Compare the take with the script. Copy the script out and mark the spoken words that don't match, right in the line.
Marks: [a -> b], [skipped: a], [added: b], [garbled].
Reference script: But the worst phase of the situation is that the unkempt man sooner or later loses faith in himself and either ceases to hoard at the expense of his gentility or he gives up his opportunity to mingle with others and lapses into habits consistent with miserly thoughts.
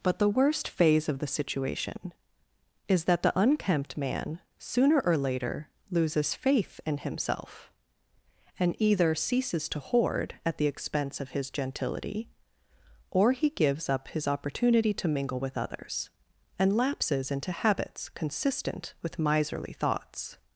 But the worst phase of the situation is that the unkempt man sooner or later loses faith in himself and either ceases to hoard at the expense of his gentility or he gives up his opportunity to mingle with others and lapses into habits consistent with miserly thoughts.